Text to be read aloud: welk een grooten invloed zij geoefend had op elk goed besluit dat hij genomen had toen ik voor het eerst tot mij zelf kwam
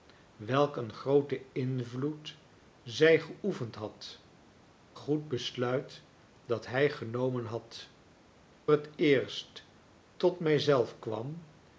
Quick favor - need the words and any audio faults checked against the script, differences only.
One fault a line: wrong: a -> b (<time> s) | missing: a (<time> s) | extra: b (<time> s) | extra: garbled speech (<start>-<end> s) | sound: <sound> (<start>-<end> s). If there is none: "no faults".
missing: op elk (4.2 s)
missing: toen ik voor (7.9 s)